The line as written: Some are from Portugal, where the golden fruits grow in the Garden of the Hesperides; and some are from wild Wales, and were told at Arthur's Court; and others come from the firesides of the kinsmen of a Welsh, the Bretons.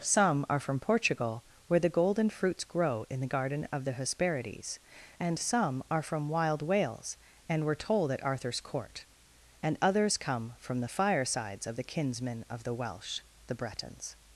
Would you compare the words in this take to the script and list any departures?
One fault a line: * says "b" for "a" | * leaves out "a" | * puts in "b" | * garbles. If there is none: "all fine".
* says "the" for "a"